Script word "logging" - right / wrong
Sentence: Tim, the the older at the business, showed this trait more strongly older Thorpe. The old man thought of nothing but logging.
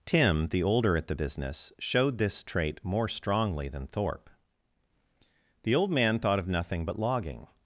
right